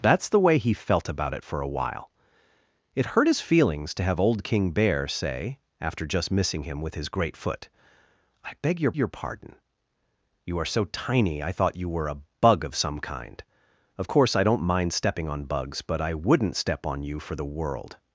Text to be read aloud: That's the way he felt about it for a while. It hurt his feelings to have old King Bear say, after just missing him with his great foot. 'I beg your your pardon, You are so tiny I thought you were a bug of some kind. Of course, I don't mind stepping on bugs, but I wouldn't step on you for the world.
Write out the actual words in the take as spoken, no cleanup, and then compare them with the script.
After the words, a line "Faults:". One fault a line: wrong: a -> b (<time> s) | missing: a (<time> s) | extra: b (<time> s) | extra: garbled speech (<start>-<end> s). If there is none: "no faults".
That's the way he felt about it for a while. It hurt his feelings to have old King Bear say, after just missing him with his great foot. 'I beg your your pardon, You are so tiny I thought you were a bug of some kind. Of course, I don't mind stepping on bugs, but I wouldn't step on you for the world.
Faults:
no faults